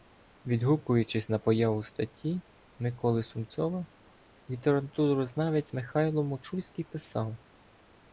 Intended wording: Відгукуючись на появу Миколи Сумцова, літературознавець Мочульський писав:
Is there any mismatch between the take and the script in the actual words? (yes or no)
yes